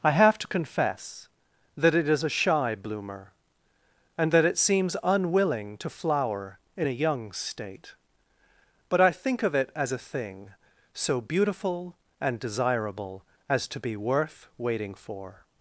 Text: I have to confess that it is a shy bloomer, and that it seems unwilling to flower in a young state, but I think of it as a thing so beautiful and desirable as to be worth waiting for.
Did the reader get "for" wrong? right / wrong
right